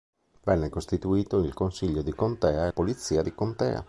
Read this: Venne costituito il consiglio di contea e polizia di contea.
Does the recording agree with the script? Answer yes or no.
yes